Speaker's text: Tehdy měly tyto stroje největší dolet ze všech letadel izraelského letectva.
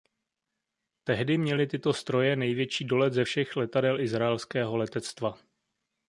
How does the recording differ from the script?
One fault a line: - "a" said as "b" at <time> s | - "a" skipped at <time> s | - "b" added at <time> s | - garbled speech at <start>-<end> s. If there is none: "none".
none